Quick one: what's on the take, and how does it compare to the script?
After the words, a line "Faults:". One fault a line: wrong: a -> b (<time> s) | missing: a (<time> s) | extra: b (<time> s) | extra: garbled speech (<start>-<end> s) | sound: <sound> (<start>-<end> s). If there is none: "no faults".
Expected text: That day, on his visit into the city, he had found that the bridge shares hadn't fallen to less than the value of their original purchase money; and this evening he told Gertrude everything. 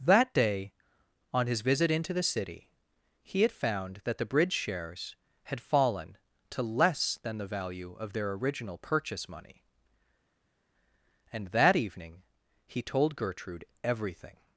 That day, on his visit into the city, he had found that the bridge shares had fallen to less than the value of their original purchase money; and that evening he told Gertrude everything.
Faults:
wrong: hadn't -> had (5.4 s)
wrong: this -> that (11.5 s)